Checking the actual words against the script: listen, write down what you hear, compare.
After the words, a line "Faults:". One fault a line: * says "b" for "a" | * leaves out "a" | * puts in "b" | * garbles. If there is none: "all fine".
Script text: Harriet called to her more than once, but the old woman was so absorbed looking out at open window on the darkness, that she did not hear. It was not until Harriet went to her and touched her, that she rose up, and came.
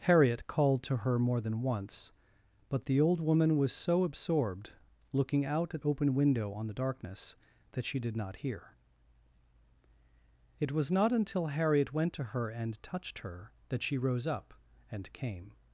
Harriet called to her more than once, but the old woman was so absorbed looking out at open window on the darkness, that she did not hear. It was not until Harriet went to her and touched her, that she rose up, and came.
Faults:
all fine